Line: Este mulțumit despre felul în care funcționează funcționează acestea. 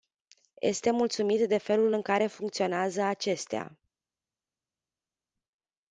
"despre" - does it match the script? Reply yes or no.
no